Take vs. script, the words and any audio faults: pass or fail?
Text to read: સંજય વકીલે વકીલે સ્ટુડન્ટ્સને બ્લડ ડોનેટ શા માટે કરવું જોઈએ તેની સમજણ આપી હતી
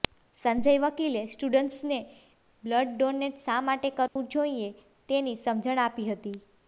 fail